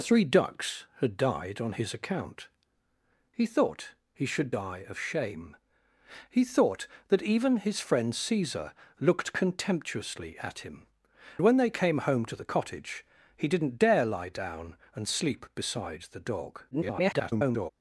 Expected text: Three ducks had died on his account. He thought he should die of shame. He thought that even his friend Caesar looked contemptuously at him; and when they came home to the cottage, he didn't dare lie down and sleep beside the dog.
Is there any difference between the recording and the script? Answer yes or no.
yes